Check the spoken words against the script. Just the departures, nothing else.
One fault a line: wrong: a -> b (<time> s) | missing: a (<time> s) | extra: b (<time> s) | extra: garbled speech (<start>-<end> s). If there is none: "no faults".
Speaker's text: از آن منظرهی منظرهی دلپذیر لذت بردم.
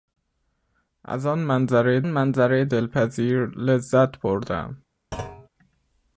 no faults